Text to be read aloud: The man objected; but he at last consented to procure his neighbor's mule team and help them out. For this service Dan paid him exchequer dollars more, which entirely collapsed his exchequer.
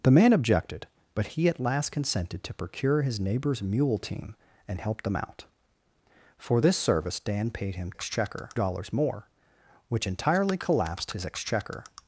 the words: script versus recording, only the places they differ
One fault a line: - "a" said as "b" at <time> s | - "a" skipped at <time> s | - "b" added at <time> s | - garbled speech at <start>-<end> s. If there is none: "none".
none